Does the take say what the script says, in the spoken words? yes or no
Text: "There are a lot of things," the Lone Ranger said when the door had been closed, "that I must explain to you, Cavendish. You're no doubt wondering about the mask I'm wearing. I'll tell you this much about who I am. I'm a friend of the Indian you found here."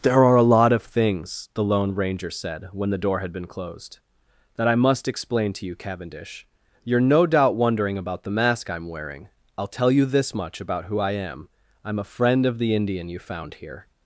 yes